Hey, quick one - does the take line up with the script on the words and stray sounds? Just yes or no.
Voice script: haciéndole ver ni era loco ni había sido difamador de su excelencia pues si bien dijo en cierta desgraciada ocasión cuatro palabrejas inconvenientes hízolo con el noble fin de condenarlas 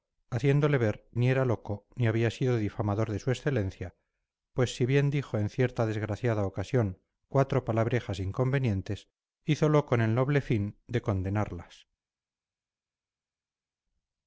yes